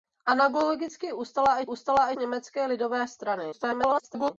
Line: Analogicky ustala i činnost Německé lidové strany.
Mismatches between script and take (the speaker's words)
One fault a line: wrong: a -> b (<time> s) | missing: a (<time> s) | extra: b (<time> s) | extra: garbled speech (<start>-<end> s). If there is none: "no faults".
wrong: činnost -> ustala (1.6 s)
extra: garbled speech (3.5-4.3 s)